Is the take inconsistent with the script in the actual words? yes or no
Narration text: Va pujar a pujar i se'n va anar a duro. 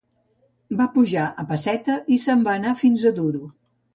yes